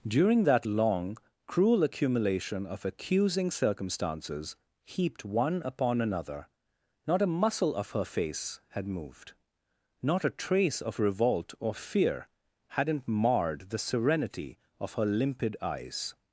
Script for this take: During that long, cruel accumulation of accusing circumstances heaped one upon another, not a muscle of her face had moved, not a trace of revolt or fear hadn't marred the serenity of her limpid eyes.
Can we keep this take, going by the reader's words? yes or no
yes